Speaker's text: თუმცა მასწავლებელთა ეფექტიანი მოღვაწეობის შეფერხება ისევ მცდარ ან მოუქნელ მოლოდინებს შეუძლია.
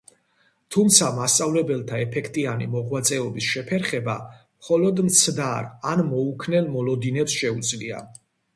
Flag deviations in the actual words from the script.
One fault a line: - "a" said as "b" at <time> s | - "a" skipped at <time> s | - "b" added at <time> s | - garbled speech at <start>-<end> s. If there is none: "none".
- "ისევ" said as "მხოლოდ" at 4.4 s